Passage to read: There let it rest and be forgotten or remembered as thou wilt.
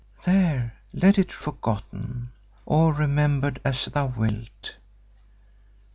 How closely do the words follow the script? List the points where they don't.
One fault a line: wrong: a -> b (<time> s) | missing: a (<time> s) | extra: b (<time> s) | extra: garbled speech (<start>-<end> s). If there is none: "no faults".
missing: rest and be (1.4 s)